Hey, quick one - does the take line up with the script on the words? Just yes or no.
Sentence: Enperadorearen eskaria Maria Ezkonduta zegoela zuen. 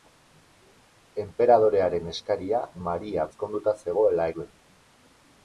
yes